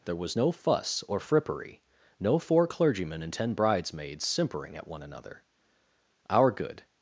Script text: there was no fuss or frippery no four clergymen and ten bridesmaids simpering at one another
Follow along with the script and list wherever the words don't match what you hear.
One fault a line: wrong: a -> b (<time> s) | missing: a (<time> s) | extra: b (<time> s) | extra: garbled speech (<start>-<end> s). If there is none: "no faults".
extra: our good (6.3 s)